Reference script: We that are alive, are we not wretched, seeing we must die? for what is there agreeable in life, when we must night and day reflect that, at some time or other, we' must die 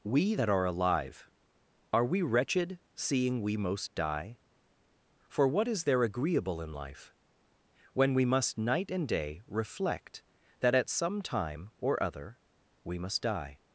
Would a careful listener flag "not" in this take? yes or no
yes